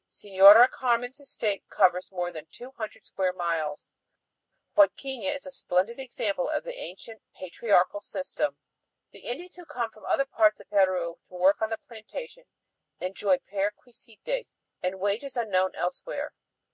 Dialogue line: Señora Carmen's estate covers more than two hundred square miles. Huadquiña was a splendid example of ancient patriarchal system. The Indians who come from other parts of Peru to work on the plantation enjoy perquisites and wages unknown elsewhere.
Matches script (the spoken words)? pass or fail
fail